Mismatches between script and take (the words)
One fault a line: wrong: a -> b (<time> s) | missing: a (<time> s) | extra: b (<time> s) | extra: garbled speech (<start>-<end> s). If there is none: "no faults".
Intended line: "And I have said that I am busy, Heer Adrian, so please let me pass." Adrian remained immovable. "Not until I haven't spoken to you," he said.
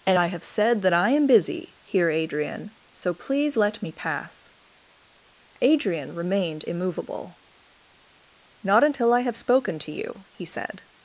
wrong: haven't -> have (9.2 s)